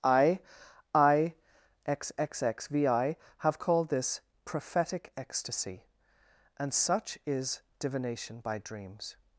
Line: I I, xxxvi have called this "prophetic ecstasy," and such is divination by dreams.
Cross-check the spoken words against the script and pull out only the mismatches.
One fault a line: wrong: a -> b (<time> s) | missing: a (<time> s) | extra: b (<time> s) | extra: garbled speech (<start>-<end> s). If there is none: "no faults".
no faults